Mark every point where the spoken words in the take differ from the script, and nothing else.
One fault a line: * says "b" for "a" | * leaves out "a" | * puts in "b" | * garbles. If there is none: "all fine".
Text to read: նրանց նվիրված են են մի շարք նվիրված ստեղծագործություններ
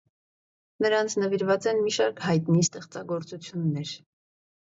* leaves out "են"
* says "հայտնի" for "նվիրված"